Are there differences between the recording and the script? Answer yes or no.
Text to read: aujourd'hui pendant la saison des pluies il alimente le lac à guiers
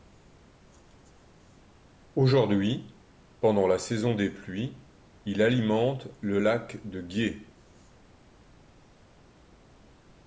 yes